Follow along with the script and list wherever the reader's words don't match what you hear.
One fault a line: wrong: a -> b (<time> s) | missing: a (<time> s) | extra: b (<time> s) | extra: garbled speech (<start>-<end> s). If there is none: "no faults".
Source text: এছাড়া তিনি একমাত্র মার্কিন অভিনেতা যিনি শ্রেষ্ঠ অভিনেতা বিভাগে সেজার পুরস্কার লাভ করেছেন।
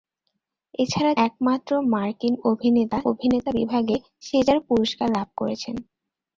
missing: তিনি (1.1 s)
missing: যিনি শ্রেষ্ঠ (3.0 s)